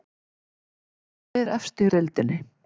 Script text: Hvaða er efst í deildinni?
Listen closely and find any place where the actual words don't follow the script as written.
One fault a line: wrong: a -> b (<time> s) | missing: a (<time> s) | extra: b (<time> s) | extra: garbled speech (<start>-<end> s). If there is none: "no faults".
no faults